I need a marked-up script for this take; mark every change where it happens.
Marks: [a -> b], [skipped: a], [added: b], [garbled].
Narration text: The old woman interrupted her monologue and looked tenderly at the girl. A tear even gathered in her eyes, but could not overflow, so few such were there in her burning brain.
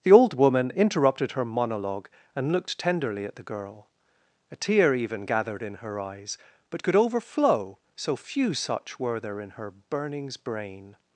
The old woman interrupted her monologue and looked tenderly at the girl. A tear even gathered in her eyes, but could [skipped: not] overflow, so few such were there in her [burning -> burnings] brain.